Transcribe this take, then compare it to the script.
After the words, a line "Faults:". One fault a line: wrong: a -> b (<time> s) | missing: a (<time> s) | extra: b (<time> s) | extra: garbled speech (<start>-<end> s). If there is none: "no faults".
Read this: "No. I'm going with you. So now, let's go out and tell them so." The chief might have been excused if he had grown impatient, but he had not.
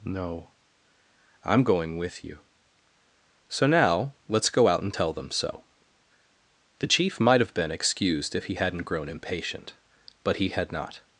"No. I'm going with you. So now, let's go out and tell them so." The chief might have been excused if he hadn't grown impatient, but he had not.
Faults:
wrong: had -> hadn't (8.5 s)